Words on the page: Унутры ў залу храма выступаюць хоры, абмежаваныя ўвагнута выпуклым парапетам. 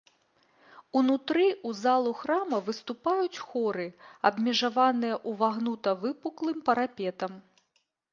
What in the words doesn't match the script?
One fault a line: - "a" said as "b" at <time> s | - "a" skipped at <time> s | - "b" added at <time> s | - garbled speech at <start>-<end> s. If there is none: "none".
none